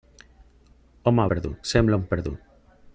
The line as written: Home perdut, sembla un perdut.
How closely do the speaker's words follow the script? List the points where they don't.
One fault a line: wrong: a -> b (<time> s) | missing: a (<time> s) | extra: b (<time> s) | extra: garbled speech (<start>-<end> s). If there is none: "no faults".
no faults